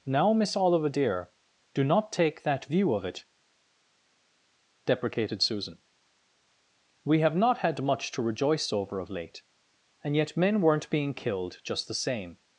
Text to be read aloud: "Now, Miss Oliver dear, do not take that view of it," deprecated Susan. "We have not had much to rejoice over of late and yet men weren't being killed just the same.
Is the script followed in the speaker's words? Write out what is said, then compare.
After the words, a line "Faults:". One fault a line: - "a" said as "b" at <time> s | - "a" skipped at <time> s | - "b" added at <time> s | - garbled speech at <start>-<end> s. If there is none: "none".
"Now, Miss Oliver dear, do not take that view of it," deprecated Susan. "We have not had much to rejoice over of late and yet men weren't being killed just the same.
Faults:
none